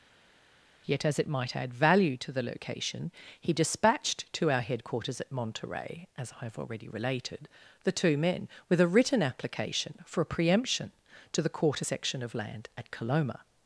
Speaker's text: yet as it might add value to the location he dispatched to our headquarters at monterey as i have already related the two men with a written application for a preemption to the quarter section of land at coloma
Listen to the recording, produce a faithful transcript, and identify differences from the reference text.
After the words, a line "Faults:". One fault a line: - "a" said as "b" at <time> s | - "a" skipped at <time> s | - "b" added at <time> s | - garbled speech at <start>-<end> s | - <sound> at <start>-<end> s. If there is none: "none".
yet as it might add value to the location he dispatched to our headquarters at monterey as i have already related the two men with a written application for a preemption to the quarter section of land at coloma
Faults:
none